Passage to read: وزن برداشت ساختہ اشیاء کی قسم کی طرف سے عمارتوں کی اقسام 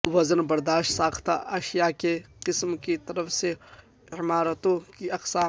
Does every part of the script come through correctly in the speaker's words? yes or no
yes